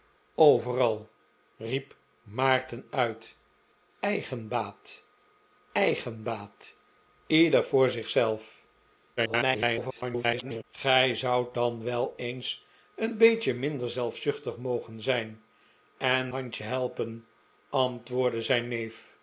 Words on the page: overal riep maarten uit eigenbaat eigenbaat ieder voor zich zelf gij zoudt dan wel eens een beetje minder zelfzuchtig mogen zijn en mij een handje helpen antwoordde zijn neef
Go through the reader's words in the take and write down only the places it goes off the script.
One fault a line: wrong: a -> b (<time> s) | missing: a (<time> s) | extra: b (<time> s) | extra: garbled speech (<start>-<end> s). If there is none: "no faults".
extra: garbled speech (9.2-10.6 s)
missing: mij een (16.3 s)